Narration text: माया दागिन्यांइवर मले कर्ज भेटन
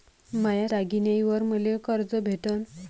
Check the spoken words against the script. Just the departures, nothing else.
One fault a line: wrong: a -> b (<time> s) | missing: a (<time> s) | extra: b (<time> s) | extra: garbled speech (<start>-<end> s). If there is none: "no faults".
no faults